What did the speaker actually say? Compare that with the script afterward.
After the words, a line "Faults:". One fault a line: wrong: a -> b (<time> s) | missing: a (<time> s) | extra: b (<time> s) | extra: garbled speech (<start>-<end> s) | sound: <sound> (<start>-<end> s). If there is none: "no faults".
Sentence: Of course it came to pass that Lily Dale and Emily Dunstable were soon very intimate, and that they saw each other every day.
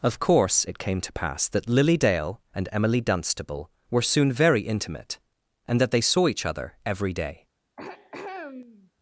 Of course it came to pass that Lily Dale and Emily Dunstable were soon very intimate, and that they saw each other every day.
Faults:
sound: throat clearing (7.8-8.9 s)